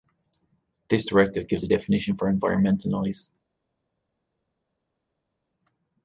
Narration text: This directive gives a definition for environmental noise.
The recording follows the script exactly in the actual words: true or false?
true